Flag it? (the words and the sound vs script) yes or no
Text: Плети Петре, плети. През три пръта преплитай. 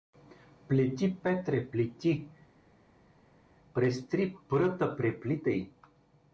no